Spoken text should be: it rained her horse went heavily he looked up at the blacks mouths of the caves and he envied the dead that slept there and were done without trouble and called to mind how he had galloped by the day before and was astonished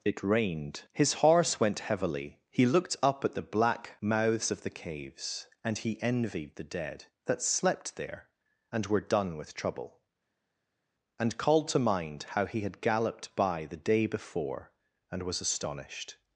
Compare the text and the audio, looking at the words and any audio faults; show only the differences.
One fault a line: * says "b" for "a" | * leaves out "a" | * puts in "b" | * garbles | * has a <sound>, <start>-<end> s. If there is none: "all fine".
* says "his" for "her"
* says "black" for "blacks"
* says "with" for "without"